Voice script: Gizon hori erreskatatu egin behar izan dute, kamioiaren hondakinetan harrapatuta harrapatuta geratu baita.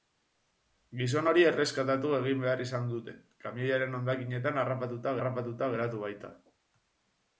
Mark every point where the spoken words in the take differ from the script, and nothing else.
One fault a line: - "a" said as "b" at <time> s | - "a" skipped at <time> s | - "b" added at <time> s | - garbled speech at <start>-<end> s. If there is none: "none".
none